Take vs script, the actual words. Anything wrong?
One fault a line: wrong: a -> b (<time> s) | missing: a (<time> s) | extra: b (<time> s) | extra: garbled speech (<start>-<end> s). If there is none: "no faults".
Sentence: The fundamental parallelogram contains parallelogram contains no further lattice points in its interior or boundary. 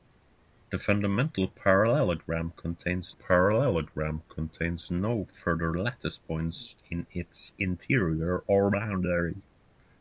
no faults